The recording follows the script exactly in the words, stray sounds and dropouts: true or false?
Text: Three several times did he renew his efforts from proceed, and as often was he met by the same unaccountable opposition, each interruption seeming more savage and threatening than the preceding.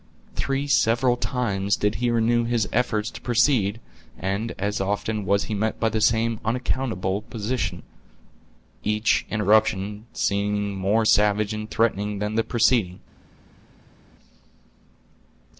false